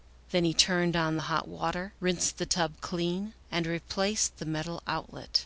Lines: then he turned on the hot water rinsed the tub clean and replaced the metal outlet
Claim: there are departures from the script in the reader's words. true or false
false